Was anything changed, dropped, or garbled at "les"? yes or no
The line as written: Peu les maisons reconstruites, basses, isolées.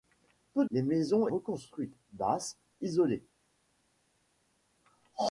no